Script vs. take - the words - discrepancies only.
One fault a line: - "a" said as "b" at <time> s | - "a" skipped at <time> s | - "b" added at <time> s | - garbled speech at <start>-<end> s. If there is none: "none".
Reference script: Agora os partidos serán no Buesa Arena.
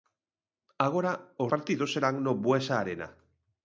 none